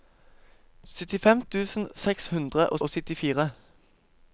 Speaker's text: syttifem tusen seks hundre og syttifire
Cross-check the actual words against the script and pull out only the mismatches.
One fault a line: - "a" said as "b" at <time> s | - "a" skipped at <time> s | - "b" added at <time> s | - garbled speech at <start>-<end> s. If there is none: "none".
- "og" added at 2.8 s